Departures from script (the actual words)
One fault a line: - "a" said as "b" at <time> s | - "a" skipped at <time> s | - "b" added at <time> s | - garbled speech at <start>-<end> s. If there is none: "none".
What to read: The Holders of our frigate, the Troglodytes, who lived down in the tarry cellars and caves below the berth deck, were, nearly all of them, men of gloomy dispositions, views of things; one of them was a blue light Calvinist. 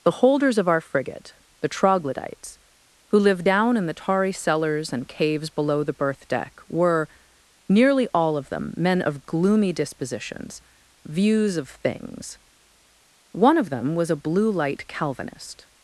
none